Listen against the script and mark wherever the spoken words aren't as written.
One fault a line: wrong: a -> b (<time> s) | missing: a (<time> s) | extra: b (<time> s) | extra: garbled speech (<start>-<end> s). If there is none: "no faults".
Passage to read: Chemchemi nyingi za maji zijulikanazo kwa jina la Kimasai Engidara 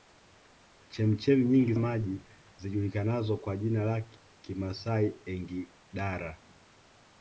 missing: za (1.7 s)